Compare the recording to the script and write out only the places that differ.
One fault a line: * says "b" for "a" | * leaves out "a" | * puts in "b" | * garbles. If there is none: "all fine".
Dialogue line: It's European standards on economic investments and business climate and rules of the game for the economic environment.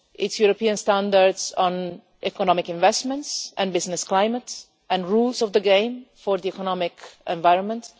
all fine